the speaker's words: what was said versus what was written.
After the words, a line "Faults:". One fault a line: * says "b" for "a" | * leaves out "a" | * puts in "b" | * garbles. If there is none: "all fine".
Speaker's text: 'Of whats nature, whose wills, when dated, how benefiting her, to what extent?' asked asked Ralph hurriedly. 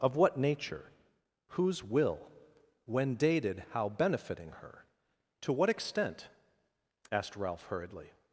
'Of what nature, whose will, when dated, how benefiting her, to what extent?' asked Ralph hurriedly.
Faults:
* says "what" for "whats"
* says "will" for "wills"
* leaves out "asked"